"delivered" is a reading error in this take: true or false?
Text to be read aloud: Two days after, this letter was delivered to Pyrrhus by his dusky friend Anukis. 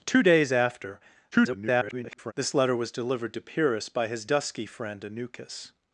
false